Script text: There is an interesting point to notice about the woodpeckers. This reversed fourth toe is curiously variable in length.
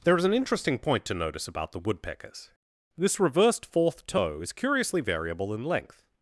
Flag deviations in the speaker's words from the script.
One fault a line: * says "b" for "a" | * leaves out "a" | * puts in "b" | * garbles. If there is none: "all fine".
all fine